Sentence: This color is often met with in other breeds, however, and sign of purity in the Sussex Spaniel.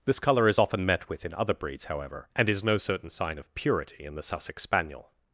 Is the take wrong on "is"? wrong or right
right